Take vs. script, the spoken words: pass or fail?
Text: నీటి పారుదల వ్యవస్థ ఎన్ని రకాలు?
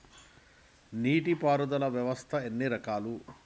pass